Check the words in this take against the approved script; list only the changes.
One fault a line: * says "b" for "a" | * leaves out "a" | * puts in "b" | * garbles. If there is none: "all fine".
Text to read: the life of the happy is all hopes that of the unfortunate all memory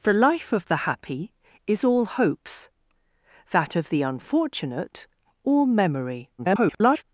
* garbles